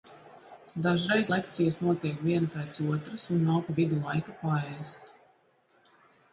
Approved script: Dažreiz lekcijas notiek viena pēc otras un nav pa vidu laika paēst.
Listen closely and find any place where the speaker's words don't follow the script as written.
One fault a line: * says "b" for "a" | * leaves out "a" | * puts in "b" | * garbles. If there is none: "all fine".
all fine